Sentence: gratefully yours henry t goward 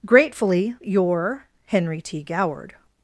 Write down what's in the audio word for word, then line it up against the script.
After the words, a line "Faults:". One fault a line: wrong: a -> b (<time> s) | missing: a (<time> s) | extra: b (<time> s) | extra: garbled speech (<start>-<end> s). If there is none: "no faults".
gratefully your henry t goward
Faults:
wrong: yours -> your (0.8 s)